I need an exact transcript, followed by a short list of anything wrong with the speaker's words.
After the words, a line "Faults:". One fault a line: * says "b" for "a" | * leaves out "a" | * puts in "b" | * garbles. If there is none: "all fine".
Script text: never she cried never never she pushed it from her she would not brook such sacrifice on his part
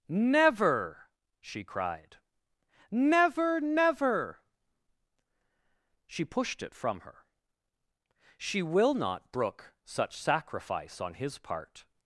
never she cried never never she pushed it from her she will not brook such sacrifice on his part
Faults:
* says "will" for "would"